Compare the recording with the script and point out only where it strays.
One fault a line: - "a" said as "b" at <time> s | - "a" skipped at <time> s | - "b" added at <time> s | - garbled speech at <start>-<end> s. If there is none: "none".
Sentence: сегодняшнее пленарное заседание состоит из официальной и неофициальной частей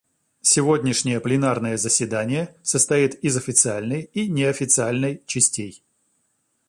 none